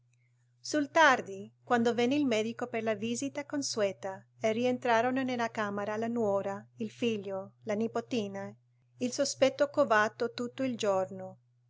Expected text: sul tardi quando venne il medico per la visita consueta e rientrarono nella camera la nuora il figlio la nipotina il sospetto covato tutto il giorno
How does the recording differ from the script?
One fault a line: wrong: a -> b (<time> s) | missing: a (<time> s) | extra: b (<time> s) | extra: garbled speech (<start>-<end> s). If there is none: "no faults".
no faults